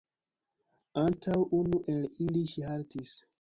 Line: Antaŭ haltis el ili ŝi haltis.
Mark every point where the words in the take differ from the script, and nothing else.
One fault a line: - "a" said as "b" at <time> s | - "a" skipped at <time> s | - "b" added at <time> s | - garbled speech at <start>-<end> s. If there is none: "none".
- "haltis" said as "unu" at 1.6 s